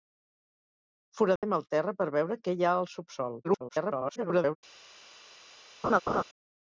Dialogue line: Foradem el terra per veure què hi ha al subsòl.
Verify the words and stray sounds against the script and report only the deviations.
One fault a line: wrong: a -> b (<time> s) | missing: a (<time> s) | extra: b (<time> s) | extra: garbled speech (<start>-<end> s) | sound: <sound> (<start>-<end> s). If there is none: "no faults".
sound: dropout (1.4-1.4 s)
extra: garbled speech (3.4-4.6 s)
sound: laugh (5.8-6.2 s)